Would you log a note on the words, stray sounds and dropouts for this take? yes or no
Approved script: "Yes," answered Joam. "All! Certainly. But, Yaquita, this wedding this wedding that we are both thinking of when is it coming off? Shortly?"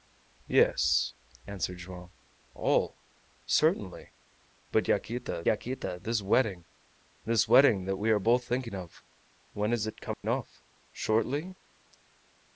yes